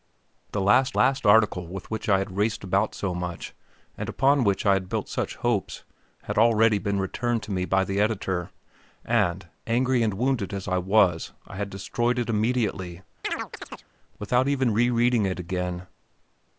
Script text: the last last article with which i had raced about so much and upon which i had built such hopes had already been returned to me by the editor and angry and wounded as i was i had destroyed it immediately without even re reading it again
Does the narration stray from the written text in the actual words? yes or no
no